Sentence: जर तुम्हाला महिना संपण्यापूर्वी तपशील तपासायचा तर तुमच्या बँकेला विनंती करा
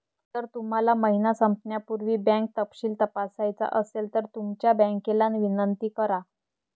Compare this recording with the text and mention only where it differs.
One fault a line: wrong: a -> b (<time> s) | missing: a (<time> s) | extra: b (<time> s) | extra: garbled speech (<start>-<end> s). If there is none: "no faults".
extra: बँक (2.2 s)
extra: असेल (3.8 s)